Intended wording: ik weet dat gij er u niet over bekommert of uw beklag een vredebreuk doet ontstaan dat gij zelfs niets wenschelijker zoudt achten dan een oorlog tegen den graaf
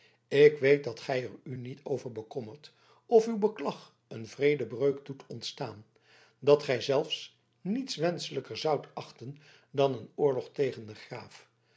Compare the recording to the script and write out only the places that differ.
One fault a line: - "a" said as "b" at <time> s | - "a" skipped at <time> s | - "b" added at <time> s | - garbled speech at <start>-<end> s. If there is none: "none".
none